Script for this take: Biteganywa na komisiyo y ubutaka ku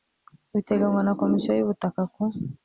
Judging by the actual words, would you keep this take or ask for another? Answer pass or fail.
pass